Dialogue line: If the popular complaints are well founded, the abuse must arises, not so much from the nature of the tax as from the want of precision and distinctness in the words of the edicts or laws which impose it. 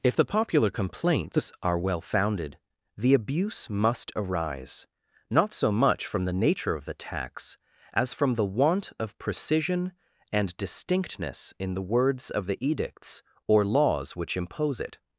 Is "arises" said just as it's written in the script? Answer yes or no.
no